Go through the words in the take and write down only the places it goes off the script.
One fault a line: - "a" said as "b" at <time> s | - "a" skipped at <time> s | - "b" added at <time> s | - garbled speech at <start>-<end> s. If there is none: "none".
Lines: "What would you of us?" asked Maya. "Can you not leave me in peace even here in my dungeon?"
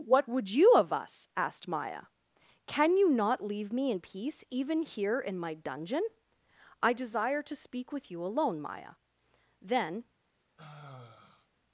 - "I desire to speak with you alone Maya Then" added at 6.8 s